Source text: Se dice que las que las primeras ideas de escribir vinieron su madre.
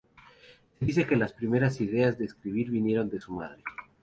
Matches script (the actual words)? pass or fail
fail